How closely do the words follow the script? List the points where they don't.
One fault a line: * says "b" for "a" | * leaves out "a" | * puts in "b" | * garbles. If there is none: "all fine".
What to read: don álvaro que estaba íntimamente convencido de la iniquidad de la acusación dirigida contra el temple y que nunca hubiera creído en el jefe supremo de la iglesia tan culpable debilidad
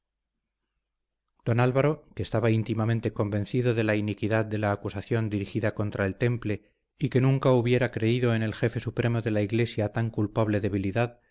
all fine